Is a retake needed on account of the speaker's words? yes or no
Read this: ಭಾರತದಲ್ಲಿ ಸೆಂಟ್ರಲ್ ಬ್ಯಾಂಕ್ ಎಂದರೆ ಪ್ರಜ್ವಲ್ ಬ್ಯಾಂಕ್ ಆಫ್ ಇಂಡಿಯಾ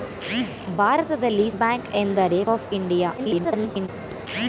yes